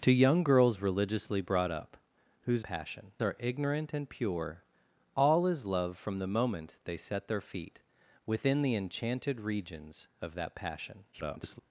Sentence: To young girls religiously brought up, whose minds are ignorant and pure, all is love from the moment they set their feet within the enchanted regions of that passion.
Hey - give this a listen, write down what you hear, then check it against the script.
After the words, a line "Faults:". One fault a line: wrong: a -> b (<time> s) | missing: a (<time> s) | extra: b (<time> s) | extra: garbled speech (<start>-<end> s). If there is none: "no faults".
To young girls religiously brought up, whose passion are ignorant and pure, all is love from the moment they set their feet within the enchanted regions of that passion. [garbled]
Faults:
wrong: minds -> passion (2.6 s)
extra: garbled speech (11.1-11.6 s)